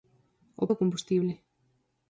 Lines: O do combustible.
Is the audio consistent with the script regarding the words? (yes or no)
yes